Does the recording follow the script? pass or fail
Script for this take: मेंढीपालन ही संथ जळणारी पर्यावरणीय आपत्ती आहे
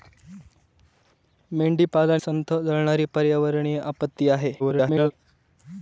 fail